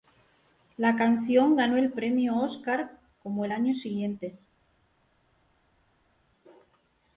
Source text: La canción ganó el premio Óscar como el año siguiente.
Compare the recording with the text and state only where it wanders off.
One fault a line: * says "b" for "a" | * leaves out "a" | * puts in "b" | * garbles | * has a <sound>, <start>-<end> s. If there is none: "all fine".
all fine